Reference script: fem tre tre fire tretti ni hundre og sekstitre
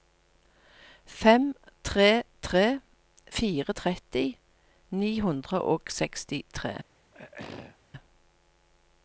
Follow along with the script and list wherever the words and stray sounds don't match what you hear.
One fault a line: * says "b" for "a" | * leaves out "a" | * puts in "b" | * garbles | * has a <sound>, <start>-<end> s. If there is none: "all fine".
* has a throat clearing, 7.1-7.8 s